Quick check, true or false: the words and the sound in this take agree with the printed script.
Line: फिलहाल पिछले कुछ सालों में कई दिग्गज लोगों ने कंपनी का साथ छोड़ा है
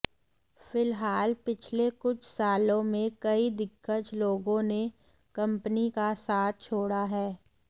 true